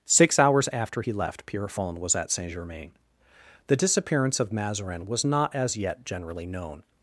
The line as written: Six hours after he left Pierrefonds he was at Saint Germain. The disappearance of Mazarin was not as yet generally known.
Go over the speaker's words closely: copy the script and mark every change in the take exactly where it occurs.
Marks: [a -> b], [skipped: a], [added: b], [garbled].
Six hours after he left Pierrefonds [skipped: he] was at Saint Germain. The disappearance of Mazarin was not as yet generally known.